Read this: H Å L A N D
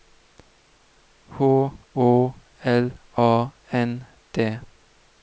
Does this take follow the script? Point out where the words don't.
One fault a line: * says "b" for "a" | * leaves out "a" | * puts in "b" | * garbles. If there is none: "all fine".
all fine